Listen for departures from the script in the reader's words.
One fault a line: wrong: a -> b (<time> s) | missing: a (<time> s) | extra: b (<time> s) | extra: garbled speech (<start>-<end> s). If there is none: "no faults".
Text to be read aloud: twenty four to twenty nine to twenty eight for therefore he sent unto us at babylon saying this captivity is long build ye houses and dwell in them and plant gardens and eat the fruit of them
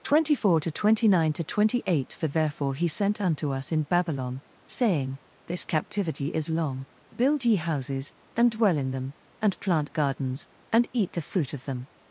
wrong: at -> in (3.7 s)